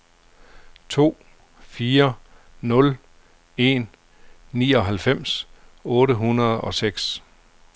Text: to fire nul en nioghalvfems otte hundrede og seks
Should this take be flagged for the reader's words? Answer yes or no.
no